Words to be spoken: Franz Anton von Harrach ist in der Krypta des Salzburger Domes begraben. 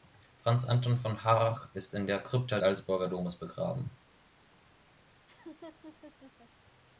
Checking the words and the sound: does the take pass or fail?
fail